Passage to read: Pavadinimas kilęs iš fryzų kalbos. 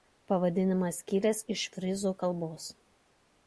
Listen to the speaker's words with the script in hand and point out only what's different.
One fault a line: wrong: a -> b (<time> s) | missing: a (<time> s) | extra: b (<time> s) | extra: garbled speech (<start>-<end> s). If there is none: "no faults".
no faults